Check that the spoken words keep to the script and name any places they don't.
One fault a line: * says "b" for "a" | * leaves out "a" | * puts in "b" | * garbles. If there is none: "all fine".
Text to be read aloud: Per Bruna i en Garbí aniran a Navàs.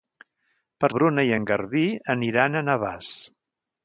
all fine